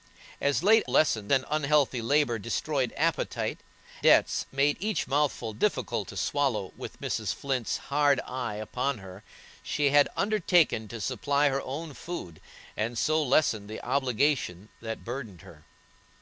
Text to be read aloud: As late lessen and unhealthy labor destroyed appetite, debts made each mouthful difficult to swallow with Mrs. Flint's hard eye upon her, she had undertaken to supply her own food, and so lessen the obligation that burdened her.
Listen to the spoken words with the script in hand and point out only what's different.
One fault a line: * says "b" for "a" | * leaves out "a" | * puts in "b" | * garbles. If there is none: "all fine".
all fine